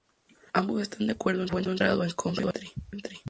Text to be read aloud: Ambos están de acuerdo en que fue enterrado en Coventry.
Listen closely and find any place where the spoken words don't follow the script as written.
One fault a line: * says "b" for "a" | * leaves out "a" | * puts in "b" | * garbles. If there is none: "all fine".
* leaves out "que"